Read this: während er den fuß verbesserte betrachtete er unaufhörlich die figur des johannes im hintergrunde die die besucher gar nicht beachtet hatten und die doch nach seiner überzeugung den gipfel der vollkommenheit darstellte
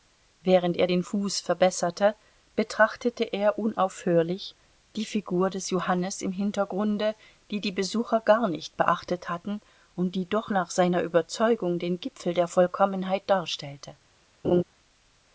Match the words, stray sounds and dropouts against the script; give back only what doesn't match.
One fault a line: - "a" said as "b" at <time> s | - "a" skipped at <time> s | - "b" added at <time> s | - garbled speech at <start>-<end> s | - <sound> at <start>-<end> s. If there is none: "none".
- laugh at 14.4-14.6 s